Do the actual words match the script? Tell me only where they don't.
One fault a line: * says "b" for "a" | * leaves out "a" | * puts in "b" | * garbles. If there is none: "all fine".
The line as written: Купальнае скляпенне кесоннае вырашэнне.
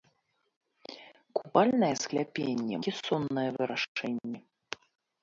all fine